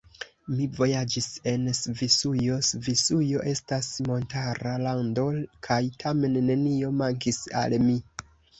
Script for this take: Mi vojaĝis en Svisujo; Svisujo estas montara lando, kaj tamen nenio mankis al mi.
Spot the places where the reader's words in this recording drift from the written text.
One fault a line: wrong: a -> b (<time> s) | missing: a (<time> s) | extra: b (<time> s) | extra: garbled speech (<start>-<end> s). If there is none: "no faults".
no faults